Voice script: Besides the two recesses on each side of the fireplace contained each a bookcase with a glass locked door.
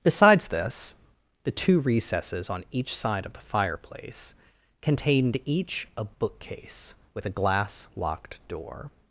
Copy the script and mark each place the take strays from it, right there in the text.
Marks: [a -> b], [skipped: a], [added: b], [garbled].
Besides [added: this] the two recesses on each side of the fireplace contained each a bookcase with a glass locked door.